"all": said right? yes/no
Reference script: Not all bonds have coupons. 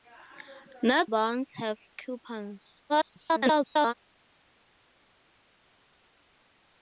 no